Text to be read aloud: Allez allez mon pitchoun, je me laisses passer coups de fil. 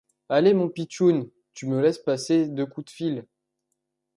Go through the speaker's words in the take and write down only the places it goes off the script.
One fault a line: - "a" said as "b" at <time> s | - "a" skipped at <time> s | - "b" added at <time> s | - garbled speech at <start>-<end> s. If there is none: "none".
- "allez" skipped at 0.6 s
- "je" said as "tu" at 1.5 s
- "deux" added at 2.5 s